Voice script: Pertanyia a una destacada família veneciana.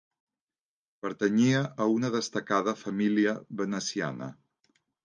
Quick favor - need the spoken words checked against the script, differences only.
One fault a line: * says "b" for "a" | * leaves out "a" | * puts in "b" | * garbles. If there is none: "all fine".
all fine